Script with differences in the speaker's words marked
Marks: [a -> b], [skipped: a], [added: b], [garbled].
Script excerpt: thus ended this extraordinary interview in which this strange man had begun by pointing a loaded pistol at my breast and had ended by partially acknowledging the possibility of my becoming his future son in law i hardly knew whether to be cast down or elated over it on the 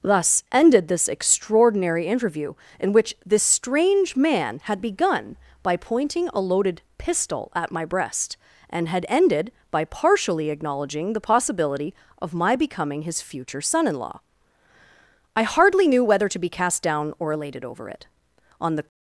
thus ended this extraordinary interview in which this strange man had begun by pointing a loaded pistol at my breast and had ended by partially acknowledging the possibility of my becoming his future son in law i hardly knew whether to be cast down or elated over it on the